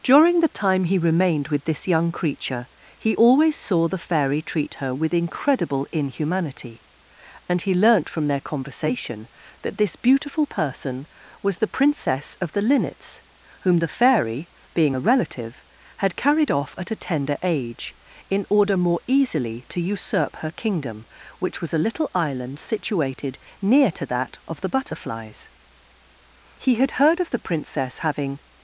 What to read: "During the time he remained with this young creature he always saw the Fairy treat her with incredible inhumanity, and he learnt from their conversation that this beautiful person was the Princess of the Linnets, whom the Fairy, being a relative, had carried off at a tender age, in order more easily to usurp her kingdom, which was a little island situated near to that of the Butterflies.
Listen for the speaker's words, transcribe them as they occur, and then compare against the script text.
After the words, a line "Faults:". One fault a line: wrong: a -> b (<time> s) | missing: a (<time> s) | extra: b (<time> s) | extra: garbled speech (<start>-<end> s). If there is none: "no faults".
"During the time he remained with this young creature he always saw the Fairy treat her with incredible inhumanity, and he learnt from their conversation that this beautiful person was the Princess of the Linnets, whom the Fairy, being a relative, had carried off at a tender age, in order more easily to usurp her kingdom, which was a little island situated near to that of the Butterflies. He had heard of the Princess having
Faults:
extra: He had heard of the Princess having (26.6 s)